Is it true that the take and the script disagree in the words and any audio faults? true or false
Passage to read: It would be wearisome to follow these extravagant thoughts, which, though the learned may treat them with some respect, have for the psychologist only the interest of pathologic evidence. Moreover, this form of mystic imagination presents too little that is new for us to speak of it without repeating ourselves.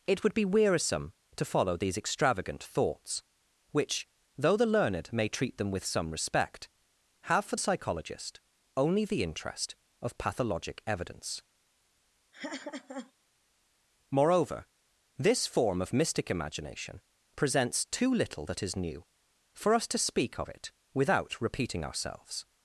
true